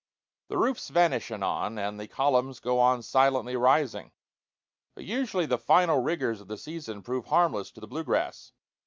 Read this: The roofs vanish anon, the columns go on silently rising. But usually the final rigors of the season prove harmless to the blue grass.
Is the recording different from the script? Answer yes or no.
yes